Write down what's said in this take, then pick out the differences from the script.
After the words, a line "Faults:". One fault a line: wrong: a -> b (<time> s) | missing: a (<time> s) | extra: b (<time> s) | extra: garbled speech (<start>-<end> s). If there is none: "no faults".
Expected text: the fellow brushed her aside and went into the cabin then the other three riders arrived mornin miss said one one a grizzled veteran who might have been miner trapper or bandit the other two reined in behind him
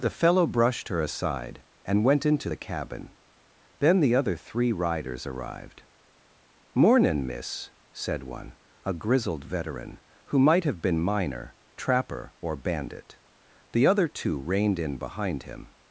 the fellow brushed her aside and went into the cabin then the other three riders arrived mornin miss said one a grizzled veteran who might have been miner trapper or bandit the other two reined in behind him
Faults:
missing: one (8.6 s)